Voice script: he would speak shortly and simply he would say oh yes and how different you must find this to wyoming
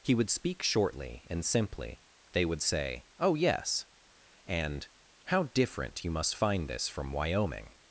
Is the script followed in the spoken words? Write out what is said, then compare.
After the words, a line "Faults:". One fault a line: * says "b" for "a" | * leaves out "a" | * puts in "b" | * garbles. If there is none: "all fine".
he would speak shortly and simply they would say oh yes and how different you must find this from wyoming
Faults:
* says "they" for "he"
* says "from" for "to"